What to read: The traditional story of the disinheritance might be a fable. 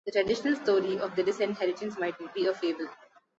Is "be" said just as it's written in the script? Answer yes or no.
yes